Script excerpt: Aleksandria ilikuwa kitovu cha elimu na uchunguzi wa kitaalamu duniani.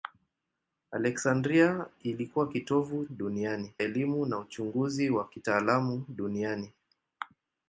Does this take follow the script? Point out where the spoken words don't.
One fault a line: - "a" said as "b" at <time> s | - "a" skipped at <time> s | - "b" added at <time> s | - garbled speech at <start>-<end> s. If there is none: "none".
- "cha" said as "duniani" at 3.1 s